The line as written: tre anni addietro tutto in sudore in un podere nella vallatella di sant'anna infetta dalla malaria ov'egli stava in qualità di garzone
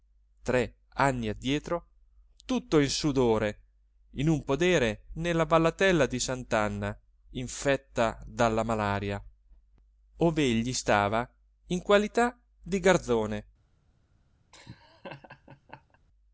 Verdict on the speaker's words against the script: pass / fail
pass